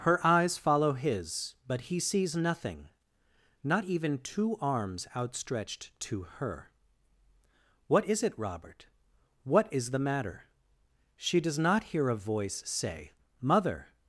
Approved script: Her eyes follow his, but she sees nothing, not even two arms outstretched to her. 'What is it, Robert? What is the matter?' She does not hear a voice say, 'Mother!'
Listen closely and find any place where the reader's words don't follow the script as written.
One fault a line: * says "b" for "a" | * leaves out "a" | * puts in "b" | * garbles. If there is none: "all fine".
* says "he" for "she"